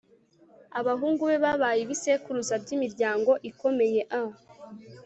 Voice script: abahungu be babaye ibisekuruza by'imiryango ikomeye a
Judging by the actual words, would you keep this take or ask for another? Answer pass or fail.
pass